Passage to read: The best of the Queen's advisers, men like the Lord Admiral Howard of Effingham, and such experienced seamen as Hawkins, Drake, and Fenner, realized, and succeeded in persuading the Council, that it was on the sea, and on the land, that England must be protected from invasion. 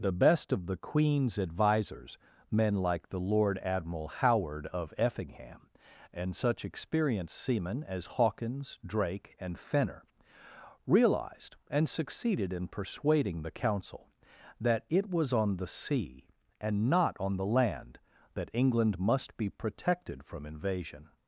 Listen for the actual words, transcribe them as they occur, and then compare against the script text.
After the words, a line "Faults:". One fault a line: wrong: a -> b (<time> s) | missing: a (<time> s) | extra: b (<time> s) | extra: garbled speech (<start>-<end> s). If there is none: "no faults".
The best of the Queen's advisers, men like the Lord Admiral Howard of Effingham, and such experienced seamen as Hawkins, Drake, and Fenner, realized, and succeeded in persuading the Council, that it was on the sea, and not on the land, that England must be protected from invasion.
Faults:
extra: not (16.9 s)